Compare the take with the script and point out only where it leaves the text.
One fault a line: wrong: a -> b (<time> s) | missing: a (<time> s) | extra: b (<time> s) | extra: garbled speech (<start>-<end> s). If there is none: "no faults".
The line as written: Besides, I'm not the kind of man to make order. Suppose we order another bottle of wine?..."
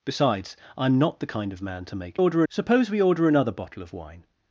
no faults